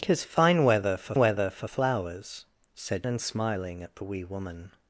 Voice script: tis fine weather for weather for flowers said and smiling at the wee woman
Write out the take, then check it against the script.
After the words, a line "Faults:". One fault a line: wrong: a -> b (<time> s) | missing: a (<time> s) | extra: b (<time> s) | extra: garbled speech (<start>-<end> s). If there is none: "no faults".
tis fine weather for weather for flowers said and smiling at the wee woman
Faults:
no faults